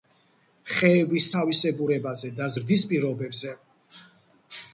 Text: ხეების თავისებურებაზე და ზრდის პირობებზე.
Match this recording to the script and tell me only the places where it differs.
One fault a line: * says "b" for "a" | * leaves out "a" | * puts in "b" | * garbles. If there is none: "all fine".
all fine